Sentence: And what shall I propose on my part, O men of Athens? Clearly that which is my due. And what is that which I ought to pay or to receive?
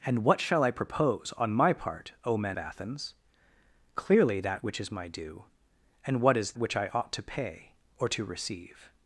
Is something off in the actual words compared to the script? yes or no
yes